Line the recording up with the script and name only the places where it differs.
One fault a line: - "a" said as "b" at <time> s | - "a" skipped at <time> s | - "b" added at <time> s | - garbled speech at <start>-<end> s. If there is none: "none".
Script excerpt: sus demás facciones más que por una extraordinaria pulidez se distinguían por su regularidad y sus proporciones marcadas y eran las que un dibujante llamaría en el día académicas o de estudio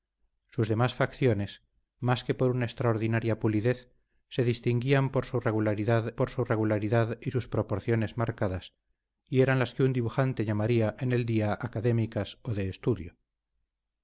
- "por su regularidad" added at 6.2 s